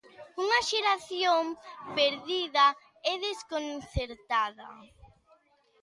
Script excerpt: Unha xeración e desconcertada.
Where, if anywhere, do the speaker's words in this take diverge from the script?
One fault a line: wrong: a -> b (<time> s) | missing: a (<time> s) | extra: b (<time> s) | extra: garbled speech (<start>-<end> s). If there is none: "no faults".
extra: perdida (2.0 s)